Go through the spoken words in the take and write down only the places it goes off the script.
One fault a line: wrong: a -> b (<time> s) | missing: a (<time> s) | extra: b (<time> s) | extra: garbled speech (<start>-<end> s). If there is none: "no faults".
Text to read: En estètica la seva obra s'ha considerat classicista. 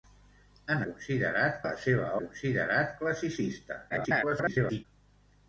wrong: estètica -> considerat (0.9 s)
missing: obra s'ha (2.1 s)
extra: garbled speech (3.9-4.8 s)